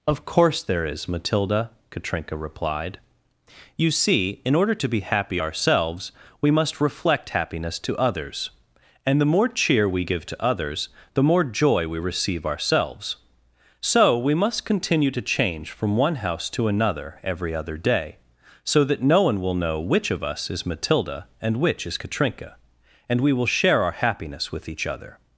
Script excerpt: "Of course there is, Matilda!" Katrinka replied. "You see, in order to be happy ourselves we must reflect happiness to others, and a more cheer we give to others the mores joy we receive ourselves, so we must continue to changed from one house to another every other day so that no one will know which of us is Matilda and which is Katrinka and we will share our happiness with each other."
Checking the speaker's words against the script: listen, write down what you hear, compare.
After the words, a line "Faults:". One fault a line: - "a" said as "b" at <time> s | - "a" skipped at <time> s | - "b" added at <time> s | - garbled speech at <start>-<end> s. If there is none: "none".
"Of course there is, Matilda!" Katrinka replied. "You see, in order to be happy ourselves we must reflect happiness to others, and the more cheer we give to others the more joy we receive ourselves, so we must continue to change from one house to another every other day so that no one will know which of us is Matilda and which is Katrinka and we will share our happiness with each other."
Faults:
- "a" said as "the" at 9.2 s
- "mores" said as "more" at 11.2 s
- "changed" said as "change" at 15.2 s